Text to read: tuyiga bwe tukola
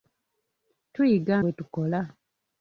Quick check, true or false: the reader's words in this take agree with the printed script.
true